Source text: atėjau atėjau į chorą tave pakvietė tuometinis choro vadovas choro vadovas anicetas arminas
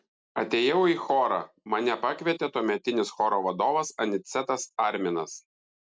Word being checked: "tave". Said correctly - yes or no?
no